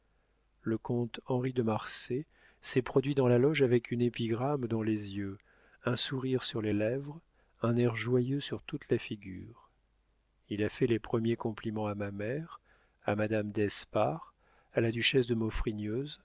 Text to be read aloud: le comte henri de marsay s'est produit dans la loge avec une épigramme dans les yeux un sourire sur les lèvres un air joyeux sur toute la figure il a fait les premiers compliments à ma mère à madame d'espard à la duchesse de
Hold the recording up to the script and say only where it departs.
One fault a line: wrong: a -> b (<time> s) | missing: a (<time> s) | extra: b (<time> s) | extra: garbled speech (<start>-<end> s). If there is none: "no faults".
no faults